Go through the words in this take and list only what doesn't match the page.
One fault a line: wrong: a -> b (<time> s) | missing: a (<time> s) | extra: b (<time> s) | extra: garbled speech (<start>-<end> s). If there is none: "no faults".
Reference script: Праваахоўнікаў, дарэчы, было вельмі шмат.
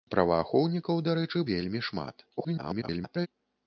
missing: было (1.4 s)
extra: garbled speech (2.4-3.3 s)